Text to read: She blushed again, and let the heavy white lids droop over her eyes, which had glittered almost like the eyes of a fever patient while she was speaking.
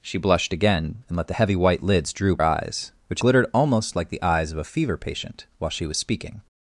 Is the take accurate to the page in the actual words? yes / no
no